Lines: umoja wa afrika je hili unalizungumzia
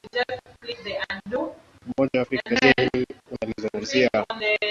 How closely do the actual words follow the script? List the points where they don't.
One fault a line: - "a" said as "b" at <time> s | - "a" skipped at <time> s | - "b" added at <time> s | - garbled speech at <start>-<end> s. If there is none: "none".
none